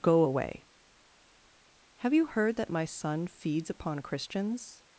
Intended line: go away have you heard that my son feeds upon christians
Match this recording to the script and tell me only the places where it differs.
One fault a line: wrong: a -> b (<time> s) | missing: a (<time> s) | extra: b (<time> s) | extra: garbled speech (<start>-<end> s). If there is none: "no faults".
no faults